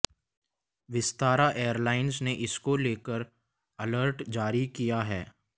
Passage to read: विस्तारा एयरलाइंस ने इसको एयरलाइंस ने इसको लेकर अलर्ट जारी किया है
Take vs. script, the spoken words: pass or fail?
fail